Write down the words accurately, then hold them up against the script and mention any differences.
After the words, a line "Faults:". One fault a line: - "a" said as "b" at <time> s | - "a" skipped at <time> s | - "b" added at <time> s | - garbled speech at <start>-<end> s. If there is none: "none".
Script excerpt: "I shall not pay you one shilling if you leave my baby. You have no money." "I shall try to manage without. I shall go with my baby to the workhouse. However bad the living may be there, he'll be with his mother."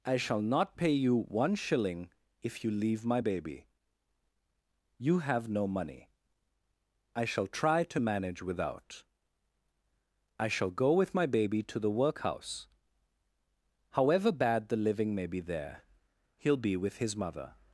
"I shall not pay you one shilling if you leave my baby. You have no money." "I shall try to manage without. I shall go with my baby to the workhouse. However bad the living may be there, he'll be with his mother."
Faults:
none